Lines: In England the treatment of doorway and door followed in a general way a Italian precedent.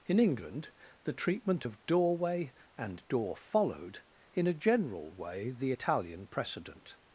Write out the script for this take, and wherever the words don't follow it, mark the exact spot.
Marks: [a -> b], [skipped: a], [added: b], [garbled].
In England the treatment of doorway and door followed in a general way [a -> the] Italian precedent.